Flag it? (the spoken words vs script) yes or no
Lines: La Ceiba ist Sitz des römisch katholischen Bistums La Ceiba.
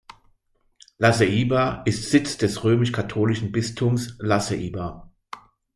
no